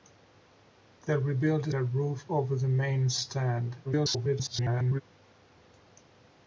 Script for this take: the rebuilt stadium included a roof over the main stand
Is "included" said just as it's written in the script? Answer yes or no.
no